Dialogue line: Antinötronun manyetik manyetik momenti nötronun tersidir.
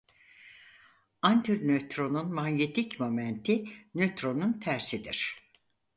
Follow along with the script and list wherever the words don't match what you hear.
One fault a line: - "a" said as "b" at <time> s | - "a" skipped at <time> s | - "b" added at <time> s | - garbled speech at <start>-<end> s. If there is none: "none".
- "manyetik" skipped at 3.0 s